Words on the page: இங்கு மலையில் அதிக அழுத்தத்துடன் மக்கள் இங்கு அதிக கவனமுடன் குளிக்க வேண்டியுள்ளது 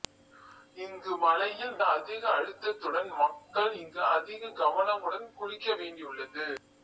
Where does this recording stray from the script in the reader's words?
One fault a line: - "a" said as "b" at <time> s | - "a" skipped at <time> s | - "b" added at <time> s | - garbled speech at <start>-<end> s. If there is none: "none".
none